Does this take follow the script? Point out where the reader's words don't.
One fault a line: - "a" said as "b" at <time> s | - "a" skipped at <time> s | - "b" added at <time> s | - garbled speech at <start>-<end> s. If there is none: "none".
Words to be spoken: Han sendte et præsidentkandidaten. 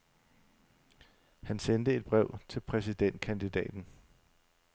- "brev til" added at 2.1 s